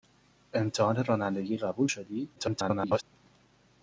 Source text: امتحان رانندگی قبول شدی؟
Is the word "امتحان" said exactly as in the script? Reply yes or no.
yes